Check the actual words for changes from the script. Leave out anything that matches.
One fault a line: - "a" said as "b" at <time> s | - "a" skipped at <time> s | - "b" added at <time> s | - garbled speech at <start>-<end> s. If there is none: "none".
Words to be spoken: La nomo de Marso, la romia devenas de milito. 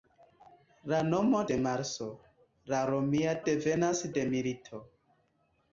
none